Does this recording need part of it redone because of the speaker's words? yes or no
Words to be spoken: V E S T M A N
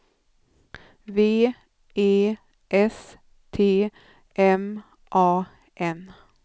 no